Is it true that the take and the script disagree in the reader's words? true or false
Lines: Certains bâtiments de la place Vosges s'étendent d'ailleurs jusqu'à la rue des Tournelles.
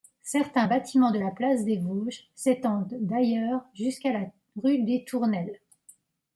true